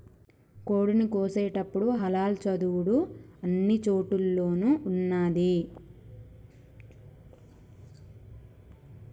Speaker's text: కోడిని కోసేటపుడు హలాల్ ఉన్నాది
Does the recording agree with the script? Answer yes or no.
no